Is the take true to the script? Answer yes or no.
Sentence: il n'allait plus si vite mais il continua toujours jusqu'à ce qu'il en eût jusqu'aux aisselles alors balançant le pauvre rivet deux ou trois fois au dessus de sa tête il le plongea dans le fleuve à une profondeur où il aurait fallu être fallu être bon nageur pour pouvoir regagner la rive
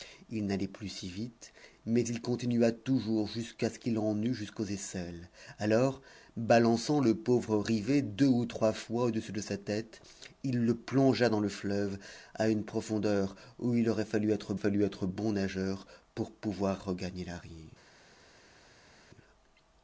yes